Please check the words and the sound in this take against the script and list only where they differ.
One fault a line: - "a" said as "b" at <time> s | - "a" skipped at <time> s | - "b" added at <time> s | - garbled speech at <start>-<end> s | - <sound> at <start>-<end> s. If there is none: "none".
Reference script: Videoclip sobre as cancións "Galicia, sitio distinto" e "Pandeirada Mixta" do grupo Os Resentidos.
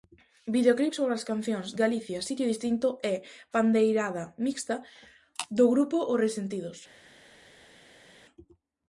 none